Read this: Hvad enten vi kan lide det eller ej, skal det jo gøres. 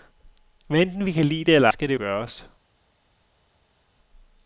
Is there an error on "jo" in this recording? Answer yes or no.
yes